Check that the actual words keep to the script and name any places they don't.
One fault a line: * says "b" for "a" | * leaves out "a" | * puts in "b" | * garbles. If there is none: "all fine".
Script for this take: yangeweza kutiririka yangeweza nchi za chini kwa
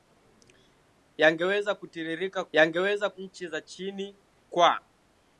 all fine